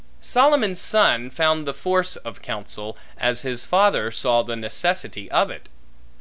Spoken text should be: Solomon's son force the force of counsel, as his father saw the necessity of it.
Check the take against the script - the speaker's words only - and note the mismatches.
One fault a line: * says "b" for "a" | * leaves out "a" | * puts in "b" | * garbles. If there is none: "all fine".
* says "found" for "force"